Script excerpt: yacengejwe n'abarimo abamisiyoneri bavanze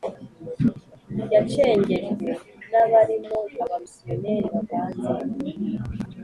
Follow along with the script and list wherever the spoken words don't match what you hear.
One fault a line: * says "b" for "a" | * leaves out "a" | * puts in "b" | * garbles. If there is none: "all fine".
all fine